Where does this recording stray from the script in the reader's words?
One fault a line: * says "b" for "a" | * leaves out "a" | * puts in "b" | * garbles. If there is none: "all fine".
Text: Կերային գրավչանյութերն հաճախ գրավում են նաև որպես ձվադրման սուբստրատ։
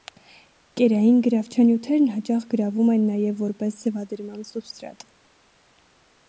all fine